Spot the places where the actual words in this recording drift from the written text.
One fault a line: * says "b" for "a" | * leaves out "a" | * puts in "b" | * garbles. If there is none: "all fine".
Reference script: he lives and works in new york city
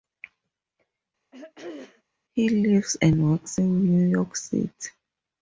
all fine